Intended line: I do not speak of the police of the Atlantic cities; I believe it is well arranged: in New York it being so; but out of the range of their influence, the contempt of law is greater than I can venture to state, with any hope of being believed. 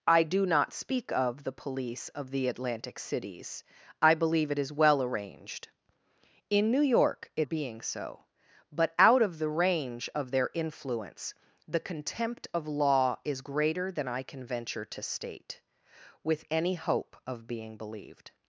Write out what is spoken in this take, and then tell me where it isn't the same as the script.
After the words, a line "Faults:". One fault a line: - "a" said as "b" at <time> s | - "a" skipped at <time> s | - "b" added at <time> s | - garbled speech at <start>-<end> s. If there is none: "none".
I do not speak of the police of the Atlantic cities; I believe it is well arranged: in New York it being so; but out of the range of their influence, the contempt of law is greater than I can venture to state, with any hope of being believed.
Faults:
none